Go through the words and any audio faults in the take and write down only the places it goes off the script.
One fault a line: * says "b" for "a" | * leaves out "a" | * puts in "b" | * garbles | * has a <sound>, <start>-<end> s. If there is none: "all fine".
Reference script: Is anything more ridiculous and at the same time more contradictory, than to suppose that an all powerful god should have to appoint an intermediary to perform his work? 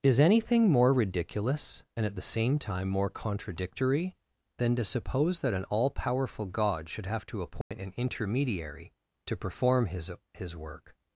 * has a dropout, 7.6-7.7 s
* puts in "his"